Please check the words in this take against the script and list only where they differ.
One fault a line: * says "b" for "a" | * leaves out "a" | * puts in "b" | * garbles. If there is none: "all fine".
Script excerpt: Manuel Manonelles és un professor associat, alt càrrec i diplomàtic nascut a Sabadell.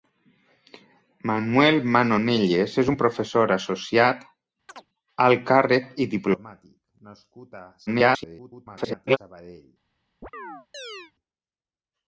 * garbles